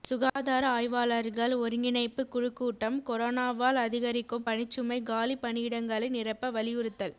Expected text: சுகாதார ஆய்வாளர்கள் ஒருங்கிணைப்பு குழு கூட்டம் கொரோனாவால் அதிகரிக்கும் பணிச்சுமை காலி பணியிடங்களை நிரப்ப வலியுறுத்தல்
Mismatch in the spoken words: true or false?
false